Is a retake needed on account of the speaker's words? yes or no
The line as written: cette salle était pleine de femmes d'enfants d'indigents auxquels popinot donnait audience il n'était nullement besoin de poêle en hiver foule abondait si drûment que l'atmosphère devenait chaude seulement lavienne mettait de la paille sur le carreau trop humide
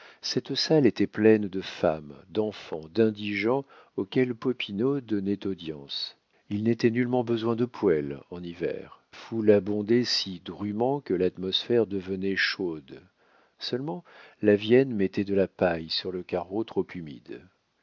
no